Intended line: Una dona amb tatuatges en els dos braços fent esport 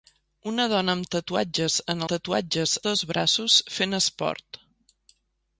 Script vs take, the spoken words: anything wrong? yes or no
yes